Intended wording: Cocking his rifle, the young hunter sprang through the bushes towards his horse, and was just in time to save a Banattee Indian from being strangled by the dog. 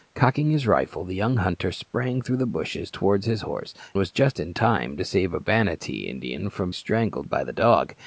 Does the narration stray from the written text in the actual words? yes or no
yes